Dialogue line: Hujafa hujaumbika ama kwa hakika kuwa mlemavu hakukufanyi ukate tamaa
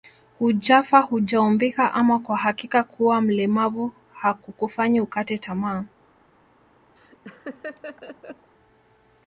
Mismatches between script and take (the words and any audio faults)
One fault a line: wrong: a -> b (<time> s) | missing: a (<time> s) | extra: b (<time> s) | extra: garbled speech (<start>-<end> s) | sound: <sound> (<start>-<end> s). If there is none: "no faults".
sound: laugh (7.0-8.5 s)